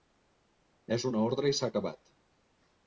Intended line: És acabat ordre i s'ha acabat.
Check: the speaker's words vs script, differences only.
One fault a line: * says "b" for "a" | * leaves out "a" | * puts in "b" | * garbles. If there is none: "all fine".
* says "una" for "acabat"